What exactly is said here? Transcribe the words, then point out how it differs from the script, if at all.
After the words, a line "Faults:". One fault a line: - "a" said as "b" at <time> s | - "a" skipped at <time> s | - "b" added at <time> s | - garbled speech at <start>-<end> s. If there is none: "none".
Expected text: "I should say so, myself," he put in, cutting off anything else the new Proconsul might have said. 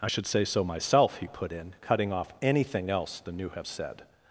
"I should say so, myself," he put in, cutting off anything else the new have said.
Faults:
- "Proconsul might" skipped at 3.5 s